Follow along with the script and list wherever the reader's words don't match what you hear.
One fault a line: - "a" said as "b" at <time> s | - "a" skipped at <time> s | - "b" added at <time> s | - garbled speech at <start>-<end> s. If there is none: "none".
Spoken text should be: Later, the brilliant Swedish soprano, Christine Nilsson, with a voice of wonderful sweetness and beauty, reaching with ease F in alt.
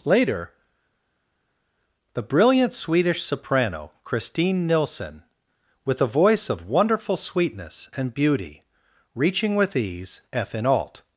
none